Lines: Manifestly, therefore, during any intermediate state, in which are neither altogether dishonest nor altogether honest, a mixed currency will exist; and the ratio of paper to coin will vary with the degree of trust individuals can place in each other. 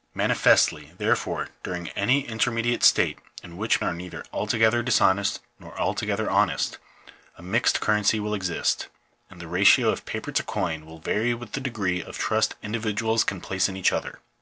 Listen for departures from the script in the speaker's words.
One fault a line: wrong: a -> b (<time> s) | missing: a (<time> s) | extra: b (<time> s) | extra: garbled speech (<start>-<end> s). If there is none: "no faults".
no faults